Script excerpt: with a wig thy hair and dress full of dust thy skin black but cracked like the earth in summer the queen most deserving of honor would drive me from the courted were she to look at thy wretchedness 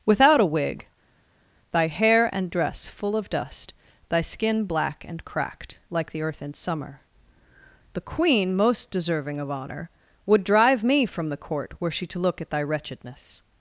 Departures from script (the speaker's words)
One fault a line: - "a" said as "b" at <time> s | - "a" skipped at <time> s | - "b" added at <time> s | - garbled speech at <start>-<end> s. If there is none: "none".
- "with" said as "without" at 0.0 s
- "but" said as "and" at 5.1 s
- "courted" said as "court" at 11.4 s